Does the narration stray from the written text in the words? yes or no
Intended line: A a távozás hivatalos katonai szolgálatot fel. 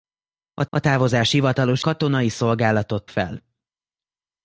no